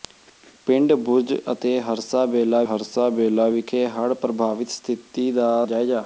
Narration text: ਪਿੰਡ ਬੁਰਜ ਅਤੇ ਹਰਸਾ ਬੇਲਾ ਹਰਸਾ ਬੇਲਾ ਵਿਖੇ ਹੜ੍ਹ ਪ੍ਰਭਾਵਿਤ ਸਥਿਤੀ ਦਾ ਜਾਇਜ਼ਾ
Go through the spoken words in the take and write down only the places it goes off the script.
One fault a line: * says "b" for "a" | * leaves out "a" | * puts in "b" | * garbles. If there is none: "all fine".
all fine